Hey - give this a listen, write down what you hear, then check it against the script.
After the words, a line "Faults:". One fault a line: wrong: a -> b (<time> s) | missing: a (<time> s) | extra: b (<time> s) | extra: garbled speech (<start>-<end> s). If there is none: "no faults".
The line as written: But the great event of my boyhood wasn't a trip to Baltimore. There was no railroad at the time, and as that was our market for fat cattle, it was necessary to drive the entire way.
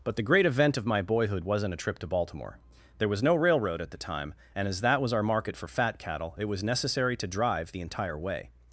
But the great event of my boyhood wasn't a trip to Baltimore. There was no railroad at the time, and as that was our market for fat cattle, it was necessary to drive the entire way.
Faults:
no faults